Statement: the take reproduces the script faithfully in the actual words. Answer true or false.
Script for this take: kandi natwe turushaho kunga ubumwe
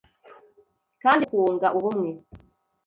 false